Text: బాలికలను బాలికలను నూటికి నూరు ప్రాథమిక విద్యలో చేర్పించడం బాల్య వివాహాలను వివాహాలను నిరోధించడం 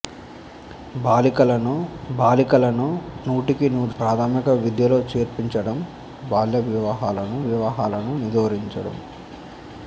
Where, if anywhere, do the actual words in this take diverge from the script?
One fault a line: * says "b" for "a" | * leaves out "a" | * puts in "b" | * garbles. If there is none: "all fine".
all fine